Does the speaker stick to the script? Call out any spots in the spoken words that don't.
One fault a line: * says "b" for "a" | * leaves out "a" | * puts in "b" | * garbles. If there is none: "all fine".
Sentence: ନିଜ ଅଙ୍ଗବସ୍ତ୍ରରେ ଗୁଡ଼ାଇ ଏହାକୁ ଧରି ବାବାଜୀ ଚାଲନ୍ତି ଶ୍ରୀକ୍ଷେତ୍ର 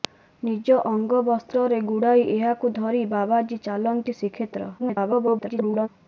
* garbles